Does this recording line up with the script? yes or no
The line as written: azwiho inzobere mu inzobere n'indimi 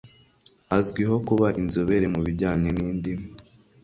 no